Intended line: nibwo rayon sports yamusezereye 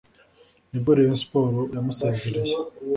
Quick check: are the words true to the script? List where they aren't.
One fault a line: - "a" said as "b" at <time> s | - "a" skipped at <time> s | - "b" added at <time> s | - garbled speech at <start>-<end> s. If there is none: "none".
none